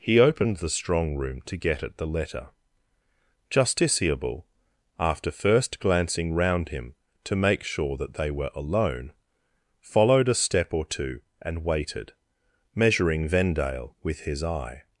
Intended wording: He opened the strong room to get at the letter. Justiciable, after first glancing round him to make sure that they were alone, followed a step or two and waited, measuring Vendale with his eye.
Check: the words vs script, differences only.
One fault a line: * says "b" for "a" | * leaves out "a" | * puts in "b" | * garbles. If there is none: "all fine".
all fine